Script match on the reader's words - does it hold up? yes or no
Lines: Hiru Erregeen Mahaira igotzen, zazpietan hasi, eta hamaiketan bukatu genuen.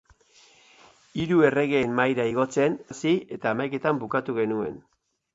no